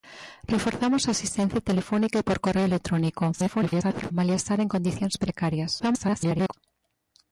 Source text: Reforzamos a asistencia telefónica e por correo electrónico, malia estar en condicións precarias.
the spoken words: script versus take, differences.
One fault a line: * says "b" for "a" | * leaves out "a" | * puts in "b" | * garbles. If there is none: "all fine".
* garbles
* garbles